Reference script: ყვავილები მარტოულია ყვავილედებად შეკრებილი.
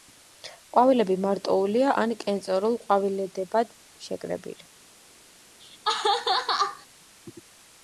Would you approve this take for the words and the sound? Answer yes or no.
no